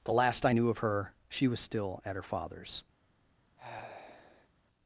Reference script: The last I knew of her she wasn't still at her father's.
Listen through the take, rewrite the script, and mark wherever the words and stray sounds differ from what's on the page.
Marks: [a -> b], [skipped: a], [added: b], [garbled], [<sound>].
The last I knew of her she [wasn't -> was] still at her father's. [sigh]